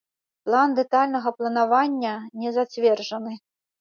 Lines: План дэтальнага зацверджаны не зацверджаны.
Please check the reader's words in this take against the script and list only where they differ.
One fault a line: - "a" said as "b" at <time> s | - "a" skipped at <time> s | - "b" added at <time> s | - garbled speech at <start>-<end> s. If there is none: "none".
- "зацверджаны" said as "планавання" at 1.4 s